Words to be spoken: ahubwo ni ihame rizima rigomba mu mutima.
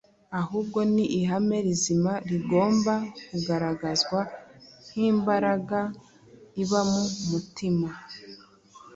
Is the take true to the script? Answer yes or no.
no